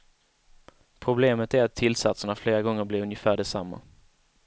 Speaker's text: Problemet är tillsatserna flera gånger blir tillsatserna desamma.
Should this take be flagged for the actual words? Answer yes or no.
yes